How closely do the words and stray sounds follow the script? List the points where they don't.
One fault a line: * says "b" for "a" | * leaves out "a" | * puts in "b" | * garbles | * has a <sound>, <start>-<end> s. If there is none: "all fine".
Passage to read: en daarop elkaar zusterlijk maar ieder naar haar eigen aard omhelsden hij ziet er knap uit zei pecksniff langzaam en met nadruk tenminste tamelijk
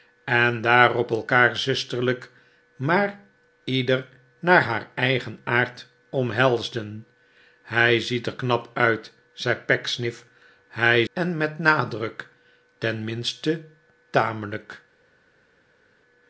* says "hij" for "langzaam"